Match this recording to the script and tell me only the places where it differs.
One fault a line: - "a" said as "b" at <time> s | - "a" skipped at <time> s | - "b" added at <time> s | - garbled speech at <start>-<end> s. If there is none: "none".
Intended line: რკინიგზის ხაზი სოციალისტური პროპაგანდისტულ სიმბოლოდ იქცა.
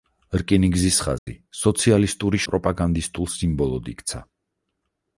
none